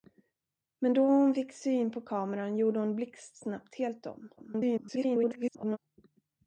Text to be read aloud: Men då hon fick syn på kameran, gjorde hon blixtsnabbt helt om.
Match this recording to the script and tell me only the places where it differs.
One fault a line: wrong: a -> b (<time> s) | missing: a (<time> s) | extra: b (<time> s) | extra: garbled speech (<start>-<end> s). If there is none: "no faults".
extra: garbled speech (4.4-5.8 s)